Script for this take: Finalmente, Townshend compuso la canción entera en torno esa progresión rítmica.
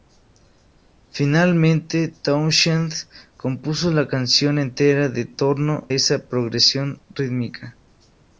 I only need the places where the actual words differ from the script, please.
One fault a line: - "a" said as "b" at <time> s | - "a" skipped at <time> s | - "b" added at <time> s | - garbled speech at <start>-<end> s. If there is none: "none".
none